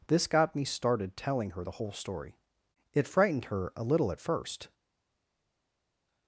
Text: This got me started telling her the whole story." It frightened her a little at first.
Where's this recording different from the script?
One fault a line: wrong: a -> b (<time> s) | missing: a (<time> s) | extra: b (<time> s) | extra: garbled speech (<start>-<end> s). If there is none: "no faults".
no faults